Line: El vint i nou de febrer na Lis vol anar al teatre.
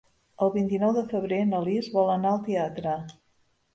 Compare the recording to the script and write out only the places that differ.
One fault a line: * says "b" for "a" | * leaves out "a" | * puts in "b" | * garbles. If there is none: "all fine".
all fine